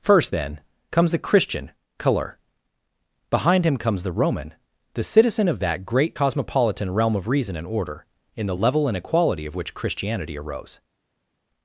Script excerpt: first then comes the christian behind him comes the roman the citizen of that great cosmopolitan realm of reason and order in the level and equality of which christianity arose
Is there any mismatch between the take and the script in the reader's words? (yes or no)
yes